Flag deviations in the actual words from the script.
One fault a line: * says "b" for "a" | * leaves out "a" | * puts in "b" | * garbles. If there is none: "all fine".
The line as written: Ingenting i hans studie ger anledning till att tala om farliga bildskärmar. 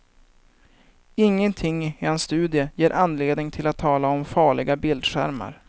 all fine